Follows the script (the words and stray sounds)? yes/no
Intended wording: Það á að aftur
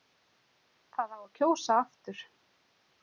no